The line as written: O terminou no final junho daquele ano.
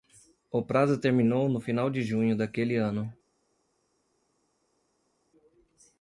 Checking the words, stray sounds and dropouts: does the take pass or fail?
fail